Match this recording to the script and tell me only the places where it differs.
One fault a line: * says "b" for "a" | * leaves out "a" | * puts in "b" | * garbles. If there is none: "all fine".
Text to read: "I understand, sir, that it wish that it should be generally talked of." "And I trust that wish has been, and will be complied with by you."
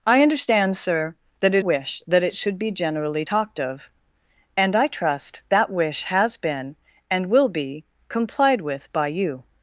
all fine